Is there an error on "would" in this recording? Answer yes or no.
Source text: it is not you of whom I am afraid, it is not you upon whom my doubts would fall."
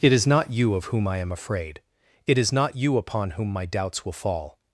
yes